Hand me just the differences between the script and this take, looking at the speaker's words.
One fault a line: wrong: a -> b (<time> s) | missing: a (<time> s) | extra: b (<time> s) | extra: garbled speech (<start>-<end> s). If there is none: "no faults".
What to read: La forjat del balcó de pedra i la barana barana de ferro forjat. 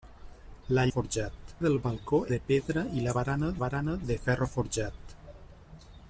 no faults